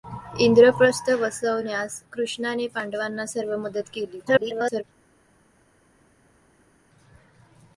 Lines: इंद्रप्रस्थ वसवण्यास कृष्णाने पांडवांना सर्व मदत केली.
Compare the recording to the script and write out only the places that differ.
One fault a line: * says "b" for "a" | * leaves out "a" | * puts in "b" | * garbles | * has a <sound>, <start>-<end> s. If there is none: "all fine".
* garbles